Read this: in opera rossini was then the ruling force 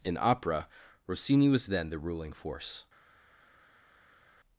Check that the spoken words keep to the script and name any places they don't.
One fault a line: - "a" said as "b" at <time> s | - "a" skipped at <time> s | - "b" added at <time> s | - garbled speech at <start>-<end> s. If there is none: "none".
none